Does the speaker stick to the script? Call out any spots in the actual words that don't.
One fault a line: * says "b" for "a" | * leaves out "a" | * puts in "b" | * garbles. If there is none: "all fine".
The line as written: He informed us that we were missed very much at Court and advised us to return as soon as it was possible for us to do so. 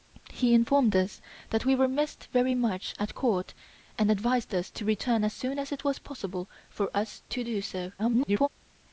* garbles